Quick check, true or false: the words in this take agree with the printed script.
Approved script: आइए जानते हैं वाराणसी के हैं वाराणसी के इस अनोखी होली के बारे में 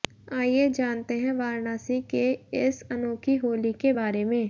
false